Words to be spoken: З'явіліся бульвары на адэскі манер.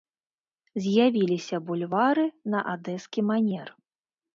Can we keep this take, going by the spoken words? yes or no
yes